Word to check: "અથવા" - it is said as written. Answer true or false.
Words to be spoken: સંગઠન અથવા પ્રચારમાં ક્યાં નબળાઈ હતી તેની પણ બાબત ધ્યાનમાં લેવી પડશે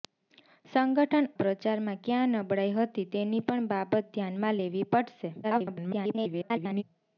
false